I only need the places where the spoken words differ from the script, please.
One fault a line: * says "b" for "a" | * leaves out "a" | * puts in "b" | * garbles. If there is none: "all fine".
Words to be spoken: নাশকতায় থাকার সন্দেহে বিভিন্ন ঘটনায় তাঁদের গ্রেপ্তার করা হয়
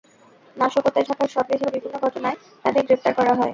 all fine